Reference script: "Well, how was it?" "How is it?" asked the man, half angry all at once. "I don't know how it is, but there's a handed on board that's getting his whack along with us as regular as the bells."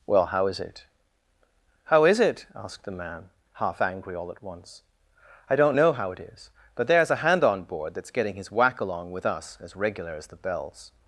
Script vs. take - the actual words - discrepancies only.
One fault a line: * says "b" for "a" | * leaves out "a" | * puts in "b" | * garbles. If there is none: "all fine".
* says "is" for "was"
* says "hand" for "handed"